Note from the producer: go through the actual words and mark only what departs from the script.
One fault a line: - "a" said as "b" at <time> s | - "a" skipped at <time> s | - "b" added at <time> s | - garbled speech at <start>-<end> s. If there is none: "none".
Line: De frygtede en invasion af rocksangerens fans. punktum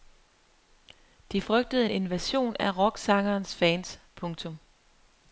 none